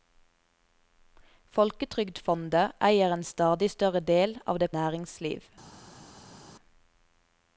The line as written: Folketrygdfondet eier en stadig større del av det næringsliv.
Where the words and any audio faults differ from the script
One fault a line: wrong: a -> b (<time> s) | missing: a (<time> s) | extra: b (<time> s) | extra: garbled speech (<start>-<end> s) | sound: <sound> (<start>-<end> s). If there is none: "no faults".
no faults